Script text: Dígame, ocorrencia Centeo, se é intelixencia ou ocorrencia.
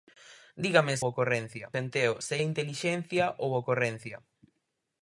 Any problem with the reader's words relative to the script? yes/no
no